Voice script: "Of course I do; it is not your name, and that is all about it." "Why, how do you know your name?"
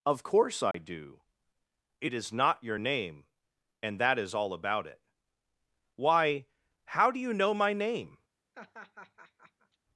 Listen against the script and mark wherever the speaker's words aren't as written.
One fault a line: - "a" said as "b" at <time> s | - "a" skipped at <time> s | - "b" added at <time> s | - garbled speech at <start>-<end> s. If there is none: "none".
- "your" said as "my" at 7.5 s